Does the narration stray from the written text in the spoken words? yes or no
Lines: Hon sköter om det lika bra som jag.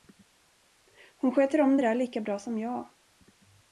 yes